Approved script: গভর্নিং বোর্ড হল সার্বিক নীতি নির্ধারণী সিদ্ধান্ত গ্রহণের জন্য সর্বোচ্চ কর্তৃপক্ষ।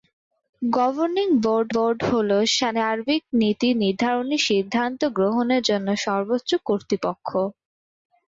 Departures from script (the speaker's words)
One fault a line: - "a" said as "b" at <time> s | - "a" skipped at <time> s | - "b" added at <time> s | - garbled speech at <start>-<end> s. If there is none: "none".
- "বোর্ড" added at 1.7 s